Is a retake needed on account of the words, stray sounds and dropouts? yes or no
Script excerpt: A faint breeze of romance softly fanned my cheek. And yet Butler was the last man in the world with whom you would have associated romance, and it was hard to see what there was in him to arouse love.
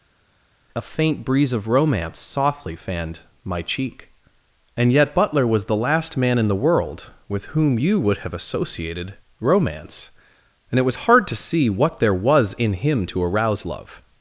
no